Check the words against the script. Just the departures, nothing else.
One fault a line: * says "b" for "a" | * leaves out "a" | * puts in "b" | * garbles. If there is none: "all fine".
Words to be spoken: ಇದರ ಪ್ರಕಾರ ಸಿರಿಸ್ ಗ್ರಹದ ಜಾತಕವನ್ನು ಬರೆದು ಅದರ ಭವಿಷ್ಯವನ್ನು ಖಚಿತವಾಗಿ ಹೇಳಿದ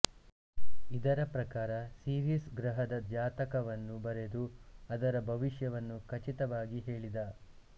all fine